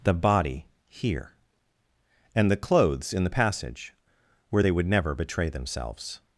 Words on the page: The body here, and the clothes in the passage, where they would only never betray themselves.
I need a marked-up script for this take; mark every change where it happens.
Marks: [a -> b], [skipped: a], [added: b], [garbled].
The body here, and the clothes in the passage, where they would [skipped: only] never betray themselves.